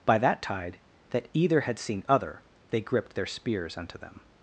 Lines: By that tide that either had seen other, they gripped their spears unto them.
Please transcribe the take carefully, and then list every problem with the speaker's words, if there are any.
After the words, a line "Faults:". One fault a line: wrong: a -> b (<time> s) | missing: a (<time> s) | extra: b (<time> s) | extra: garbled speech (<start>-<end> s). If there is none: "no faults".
By that tide that either had seen other, they gripped their spears unto them.
Faults:
no faults